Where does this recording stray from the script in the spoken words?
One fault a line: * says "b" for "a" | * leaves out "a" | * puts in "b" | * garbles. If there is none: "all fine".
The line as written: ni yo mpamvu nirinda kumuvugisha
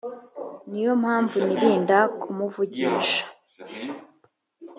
all fine